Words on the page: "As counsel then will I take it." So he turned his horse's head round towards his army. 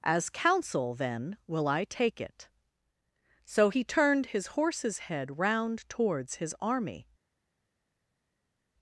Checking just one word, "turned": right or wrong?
right